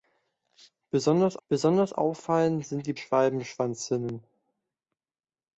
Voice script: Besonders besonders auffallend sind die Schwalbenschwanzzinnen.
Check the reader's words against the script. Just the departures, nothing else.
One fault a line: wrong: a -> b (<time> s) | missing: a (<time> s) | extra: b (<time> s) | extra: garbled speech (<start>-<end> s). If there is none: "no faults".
no faults